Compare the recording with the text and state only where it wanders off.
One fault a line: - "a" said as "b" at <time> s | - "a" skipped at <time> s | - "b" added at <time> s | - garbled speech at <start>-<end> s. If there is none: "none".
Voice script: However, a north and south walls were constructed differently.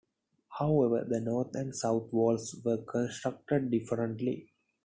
- "a" said as "the" at 1.1 s